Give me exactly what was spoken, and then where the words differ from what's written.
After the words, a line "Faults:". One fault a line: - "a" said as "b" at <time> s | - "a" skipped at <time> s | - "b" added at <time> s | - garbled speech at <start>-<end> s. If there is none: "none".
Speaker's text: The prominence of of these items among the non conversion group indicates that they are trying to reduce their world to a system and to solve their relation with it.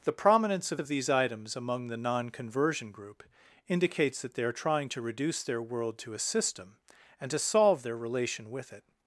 The prominence of of these items among the non conversion group indicates that they are trying to reduce their world to a system and to solve their relation with it.
Faults:
none